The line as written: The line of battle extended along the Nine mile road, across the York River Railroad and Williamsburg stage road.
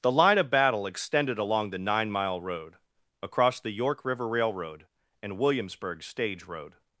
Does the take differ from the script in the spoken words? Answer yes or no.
no